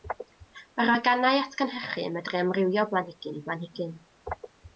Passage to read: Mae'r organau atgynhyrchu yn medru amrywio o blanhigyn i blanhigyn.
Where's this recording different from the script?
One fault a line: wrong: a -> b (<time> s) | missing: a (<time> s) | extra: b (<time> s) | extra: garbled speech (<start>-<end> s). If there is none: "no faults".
no faults